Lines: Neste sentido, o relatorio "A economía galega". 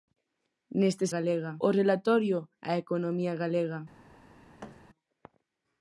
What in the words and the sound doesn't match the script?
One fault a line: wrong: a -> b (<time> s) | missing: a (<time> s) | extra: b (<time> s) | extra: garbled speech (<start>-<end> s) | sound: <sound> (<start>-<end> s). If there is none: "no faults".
wrong: sentido -> galega (1.1 s)
sound: thud (4.6-4.8 s)